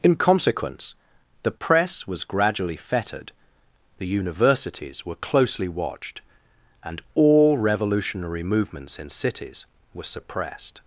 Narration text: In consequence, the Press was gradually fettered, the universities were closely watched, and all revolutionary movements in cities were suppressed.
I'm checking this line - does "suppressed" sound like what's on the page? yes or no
yes